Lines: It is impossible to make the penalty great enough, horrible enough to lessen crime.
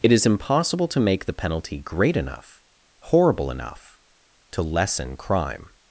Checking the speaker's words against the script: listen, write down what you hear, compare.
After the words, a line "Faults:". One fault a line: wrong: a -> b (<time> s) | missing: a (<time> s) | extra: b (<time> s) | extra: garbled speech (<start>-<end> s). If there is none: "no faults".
It is impossible to make the penalty great enough, horrible enough to lessen crime.
Faults:
no faults